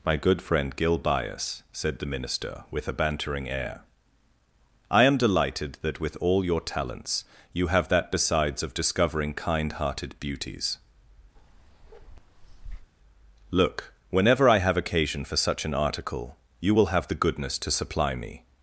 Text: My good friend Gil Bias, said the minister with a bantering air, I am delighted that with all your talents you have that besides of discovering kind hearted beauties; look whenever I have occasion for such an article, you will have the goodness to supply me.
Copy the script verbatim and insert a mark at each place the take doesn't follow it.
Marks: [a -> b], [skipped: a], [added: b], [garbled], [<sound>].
My good friend Gil Bias, said the minister with a bantering air, I am delighted that with all your talents you have that besides of discovering kind hearted beauties; [bark] look whenever I have occasion for such an article, you will have the goodness to supply me.